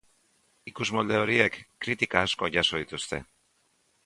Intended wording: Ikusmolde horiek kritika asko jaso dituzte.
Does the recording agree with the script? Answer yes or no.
yes